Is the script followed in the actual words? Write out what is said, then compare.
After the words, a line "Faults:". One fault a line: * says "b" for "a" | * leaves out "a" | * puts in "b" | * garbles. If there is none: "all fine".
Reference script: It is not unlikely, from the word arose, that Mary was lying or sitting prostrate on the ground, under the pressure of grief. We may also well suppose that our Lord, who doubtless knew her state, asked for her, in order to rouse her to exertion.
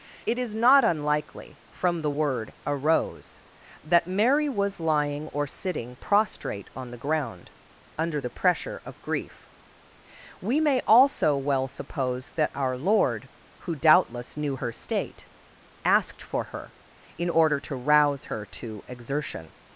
It is not unlikely, from the word arose, that Mary was lying or sitting prostrate on the ground, under the pressure of grief. We may also well suppose that our Lord, who doubtless knew her state, asked for her, in order to rouse her to exertion.
Faults:
all fine